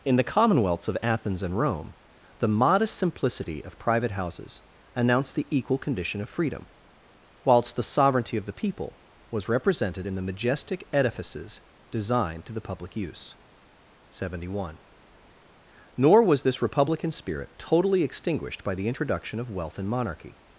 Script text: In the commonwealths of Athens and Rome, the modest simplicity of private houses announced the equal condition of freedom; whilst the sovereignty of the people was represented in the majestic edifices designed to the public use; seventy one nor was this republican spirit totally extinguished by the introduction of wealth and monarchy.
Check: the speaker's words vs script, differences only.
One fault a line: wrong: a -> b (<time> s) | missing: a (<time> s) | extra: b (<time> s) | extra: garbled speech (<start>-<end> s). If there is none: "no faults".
no faults